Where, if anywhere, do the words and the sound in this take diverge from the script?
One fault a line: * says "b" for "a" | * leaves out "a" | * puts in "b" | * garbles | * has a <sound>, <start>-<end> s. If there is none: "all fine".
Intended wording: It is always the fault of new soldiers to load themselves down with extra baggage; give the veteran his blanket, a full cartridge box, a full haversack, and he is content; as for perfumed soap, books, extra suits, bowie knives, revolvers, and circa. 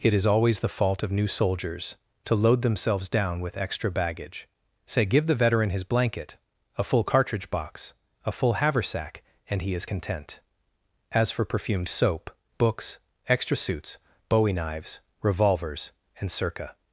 * puts in "say"